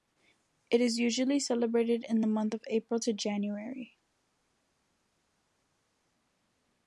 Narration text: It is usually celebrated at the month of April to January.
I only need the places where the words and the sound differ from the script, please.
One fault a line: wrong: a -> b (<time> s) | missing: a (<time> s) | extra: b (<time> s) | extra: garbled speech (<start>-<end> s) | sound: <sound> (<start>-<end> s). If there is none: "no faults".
wrong: at -> in (2.1 s)